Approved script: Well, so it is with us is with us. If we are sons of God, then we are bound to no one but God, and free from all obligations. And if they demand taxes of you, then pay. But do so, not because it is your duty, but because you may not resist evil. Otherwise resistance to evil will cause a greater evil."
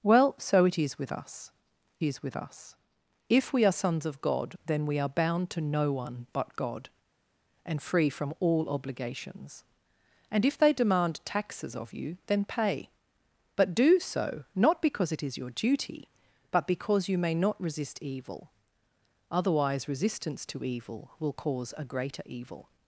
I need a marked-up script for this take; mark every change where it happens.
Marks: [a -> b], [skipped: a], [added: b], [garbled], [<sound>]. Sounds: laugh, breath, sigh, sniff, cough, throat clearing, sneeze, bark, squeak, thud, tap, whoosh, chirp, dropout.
Well, so it is with us is with us. If we are sons of God, then we are bound to no one but God, and free from all obligations. And if they demand taxes of you, then pay. But do so, not because it is your duty, but because you may not resist evil. Otherwise resistance to evil will cause a greater evil."